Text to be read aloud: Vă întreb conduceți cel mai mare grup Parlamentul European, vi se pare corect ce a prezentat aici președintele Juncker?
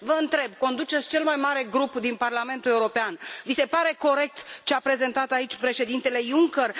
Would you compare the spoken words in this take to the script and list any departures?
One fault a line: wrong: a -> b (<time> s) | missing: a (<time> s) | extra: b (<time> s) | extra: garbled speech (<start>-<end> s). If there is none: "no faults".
extra: din (1.9 s)